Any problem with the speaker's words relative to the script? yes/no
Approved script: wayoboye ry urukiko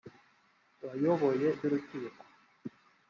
no